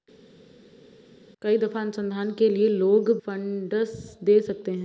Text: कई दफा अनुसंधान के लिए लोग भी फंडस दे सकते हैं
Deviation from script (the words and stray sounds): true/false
true